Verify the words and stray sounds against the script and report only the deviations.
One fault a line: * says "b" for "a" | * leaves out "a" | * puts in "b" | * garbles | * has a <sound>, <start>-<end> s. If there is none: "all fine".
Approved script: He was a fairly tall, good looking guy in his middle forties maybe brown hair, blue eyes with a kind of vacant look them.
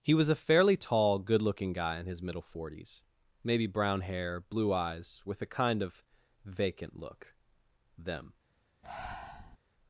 * has a breath, 8.8-9.6 s